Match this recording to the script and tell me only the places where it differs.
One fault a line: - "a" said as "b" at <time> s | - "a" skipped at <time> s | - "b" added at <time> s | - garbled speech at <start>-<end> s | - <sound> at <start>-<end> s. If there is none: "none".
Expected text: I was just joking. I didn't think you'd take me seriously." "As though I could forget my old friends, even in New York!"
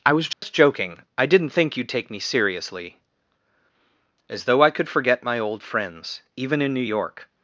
- dropout at 0.3-0.4 s